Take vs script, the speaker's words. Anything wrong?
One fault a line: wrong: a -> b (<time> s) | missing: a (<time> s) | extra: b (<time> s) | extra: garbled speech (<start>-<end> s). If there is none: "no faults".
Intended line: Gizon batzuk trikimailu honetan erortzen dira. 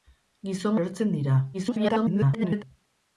missing: batzuk trikimailu honetan (0.8 s)
extra: garbled speech (1.5-2.6 s)